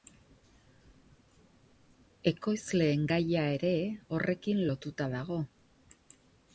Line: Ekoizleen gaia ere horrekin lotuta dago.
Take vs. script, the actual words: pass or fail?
pass